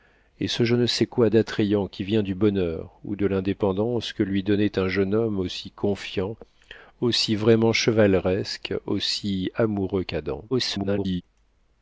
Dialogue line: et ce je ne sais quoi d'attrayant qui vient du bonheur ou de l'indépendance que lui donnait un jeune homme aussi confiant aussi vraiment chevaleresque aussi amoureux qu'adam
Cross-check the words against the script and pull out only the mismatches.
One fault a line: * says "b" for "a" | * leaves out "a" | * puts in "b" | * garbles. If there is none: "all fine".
* garbles